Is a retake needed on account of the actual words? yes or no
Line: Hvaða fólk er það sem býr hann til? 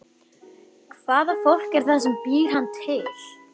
no